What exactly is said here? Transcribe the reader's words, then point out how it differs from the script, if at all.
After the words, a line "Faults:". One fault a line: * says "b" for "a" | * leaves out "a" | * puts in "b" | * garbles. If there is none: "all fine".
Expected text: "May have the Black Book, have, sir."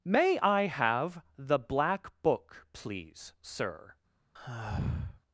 "May I have the Black Book, please, sir."
Faults:
* puts in "I"
* says "please" for "have"